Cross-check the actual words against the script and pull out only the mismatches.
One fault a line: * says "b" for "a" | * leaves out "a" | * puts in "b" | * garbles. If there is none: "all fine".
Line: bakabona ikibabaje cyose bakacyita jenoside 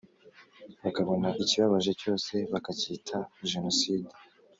all fine